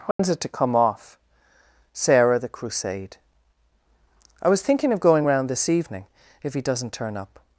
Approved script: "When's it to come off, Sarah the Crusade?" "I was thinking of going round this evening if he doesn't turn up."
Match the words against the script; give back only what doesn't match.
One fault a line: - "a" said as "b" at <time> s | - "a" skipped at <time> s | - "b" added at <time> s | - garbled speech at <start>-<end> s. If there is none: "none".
none